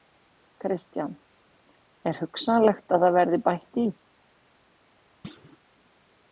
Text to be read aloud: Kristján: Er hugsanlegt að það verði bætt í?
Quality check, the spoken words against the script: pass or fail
pass